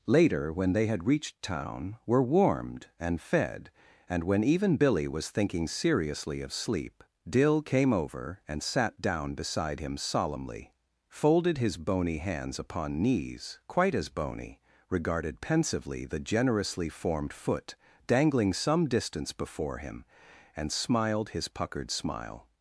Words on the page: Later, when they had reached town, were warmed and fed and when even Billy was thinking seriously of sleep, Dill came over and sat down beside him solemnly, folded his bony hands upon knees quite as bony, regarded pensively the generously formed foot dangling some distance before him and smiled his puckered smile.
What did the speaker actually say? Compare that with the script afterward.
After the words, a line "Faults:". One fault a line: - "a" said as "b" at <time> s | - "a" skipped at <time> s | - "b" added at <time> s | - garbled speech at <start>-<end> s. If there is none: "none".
Later, when they had reached town, were warmed and fed and when even Billy was thinking seriously of sleep, Dill came over and sat down beside him solemnly, folded his bony hands upon knees quite as bony, regarded pensively the generously formed foot dangling some distance before him and smiled his puckered smile.
Faults:
none